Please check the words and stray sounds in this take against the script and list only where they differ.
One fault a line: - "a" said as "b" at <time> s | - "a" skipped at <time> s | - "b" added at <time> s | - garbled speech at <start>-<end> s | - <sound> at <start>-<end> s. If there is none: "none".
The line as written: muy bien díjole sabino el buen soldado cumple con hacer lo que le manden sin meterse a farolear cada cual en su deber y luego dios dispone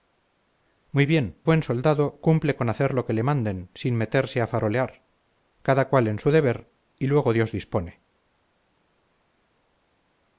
- "díjole sabino el" skipped at 1.4 s